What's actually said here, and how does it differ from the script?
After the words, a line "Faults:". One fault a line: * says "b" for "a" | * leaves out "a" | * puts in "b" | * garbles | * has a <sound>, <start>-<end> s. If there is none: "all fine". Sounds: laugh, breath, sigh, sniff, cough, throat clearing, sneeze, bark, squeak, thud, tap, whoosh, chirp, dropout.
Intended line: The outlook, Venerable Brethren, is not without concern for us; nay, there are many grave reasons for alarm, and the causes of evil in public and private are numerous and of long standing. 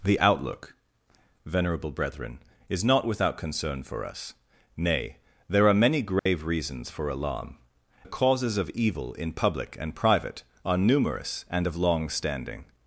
The outlook, Venerable Brethren, is not without concern for us; nay, there are many grave reasons for alarm, the causes of evil in public and private are numerous and of long standing.
Faults:
* has a dropout, 6.2-6.3 s
* leaves out "and"